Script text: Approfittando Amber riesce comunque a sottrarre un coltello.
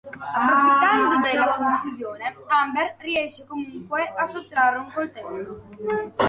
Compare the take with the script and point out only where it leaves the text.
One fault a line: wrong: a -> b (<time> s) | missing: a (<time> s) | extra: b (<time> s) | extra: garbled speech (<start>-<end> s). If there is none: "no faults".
extra: della confusione (1.2 s)